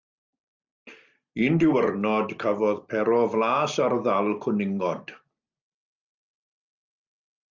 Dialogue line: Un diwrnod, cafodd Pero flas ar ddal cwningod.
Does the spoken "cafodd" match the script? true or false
true